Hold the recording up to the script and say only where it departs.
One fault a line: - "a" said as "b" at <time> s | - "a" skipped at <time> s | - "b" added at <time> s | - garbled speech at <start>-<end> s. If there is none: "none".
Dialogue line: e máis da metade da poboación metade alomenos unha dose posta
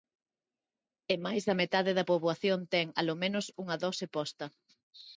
- "metade" said as "ten" at 2.7 s